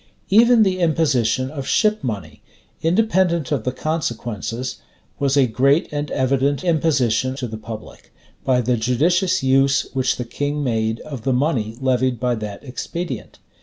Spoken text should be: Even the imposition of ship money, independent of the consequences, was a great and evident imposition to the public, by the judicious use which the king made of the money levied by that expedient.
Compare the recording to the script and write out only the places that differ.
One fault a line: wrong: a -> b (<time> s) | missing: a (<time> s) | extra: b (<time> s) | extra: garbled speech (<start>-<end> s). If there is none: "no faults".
no faults